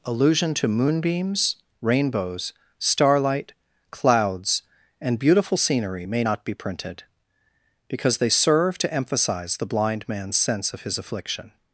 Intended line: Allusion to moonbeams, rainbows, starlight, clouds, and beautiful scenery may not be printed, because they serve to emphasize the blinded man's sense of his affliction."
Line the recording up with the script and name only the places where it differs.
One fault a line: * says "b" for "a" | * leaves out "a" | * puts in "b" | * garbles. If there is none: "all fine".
* says "blind" for "blinded"